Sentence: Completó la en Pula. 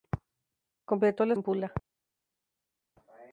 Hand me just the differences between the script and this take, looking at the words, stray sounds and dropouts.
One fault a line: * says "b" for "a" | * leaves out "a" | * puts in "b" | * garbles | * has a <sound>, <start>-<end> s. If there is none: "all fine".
all fine